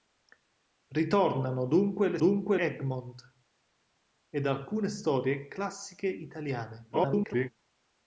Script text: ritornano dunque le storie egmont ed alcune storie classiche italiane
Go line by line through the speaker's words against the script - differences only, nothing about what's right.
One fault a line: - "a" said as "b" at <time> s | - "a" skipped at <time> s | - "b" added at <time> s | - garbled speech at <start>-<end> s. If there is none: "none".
- "storie" said as "dunque" at 2.2 s
- garbled speech at 6.9-7.5 s